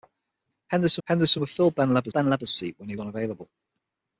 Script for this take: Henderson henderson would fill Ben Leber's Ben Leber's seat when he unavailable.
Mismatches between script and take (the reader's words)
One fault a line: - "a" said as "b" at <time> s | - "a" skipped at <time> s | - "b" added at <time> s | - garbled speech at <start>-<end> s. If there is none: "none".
none